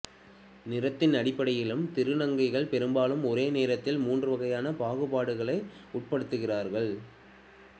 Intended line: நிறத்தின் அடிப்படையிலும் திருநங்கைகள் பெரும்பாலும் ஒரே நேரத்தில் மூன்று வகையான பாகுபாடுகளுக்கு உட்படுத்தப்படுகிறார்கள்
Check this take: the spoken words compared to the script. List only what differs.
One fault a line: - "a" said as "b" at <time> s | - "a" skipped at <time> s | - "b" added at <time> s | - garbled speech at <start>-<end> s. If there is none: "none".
none